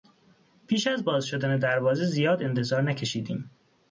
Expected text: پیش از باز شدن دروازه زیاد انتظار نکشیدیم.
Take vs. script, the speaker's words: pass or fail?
pass